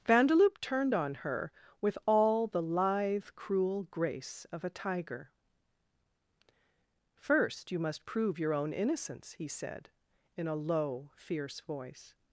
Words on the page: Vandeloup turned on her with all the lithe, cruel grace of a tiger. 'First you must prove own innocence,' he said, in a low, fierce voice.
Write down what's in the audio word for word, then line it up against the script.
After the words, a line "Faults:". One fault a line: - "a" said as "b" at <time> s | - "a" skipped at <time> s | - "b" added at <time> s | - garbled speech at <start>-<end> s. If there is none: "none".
Vandeloup turned on her with all the lithe, cruel grace of a tiger. 'First you must prove your own innocence,' he said, in a low, fierce voice.
Faults:
- "your" added at 8.4 s